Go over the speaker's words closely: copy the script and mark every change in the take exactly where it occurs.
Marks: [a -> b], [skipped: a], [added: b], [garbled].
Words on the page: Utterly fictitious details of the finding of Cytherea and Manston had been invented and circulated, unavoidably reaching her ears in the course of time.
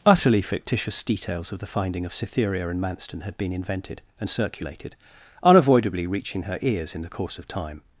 Utterly fictitious details of the finding of Cytherea and Manston had been invented and circulated, unavoidably reaching her ears in the course of time.